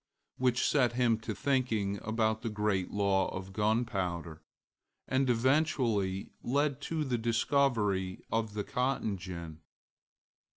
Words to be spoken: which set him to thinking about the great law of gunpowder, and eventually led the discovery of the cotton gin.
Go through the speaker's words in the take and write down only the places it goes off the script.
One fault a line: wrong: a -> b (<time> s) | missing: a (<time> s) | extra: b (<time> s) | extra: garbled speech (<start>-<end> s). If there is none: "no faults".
extra: to (6.8 s)